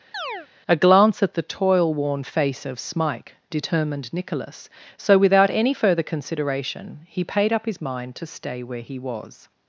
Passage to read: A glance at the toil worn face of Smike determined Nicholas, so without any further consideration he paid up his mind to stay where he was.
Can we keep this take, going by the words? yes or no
yes